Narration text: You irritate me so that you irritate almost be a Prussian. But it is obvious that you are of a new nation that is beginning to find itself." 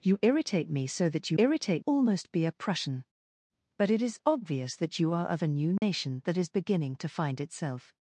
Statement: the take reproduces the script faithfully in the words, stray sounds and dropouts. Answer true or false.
false